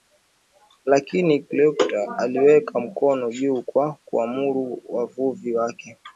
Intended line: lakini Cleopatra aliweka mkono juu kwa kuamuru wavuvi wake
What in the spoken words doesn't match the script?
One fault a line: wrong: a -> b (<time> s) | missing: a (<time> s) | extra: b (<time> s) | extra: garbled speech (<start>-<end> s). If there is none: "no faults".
no faults